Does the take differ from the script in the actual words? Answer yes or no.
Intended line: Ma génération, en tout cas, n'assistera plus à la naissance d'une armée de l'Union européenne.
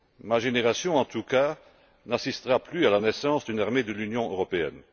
no